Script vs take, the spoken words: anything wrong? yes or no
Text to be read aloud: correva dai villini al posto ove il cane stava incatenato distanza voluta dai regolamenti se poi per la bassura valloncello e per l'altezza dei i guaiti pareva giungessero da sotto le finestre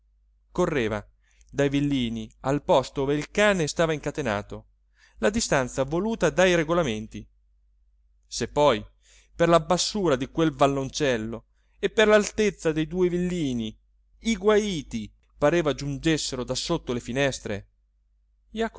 yes